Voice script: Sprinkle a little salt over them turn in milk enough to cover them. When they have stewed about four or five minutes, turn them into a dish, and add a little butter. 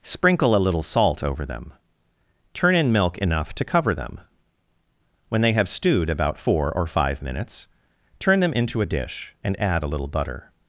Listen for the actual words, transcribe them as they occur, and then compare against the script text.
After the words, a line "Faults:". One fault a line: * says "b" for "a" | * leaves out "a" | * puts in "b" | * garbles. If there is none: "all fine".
Sprinkle a little salt over them turn in milk enough to cover them. When they have stewed about four or five minutes, turn them into a dish, and add a little butter.
Faults:
all fine